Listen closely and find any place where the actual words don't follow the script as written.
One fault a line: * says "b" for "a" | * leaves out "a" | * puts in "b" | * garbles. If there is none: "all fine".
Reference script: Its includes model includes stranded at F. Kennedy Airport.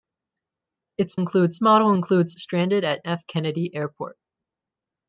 all fine